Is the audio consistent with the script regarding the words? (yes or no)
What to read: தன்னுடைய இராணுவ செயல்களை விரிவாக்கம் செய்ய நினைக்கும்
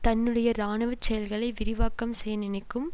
yes